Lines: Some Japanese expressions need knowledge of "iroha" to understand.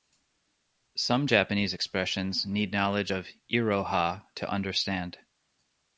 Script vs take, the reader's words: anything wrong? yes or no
no